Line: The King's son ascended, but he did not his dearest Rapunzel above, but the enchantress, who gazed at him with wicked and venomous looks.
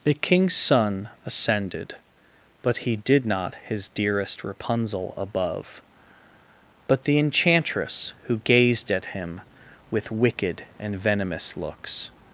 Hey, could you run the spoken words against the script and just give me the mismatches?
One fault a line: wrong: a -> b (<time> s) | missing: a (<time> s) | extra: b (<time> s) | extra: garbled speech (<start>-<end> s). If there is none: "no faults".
no faults